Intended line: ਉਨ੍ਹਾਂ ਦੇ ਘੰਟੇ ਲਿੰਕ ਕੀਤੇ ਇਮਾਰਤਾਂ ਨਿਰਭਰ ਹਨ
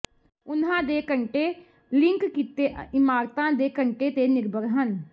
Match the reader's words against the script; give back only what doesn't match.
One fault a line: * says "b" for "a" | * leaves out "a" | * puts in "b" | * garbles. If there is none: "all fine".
* puts in "ਦੇ ਘੰਟੇ ਤੇ"